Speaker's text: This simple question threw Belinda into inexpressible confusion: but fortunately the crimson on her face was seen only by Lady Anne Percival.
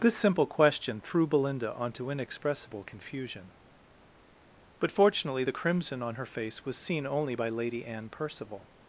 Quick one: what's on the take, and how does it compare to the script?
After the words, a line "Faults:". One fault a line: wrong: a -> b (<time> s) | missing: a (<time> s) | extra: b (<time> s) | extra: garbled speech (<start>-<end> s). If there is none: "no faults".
This simple question threw Belinda onto inexpressible confusion: but fortunately the crimson on her face was seen only by Lady Anne Percival.
Faults:
wrong: into -> onto (1.8 s)